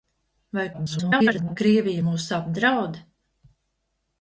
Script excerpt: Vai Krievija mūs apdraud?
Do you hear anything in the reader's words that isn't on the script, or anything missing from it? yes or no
yes